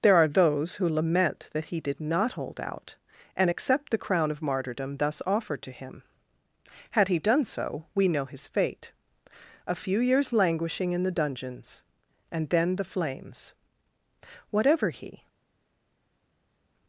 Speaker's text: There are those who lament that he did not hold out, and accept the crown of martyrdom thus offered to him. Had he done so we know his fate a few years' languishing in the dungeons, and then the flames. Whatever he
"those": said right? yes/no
yes